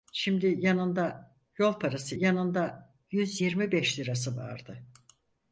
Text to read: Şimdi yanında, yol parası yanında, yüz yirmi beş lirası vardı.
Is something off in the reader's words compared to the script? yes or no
no